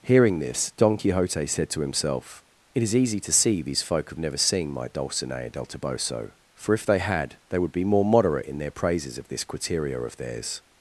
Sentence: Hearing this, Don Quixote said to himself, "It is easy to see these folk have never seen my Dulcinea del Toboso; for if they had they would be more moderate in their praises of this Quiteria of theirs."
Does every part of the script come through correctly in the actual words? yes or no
yes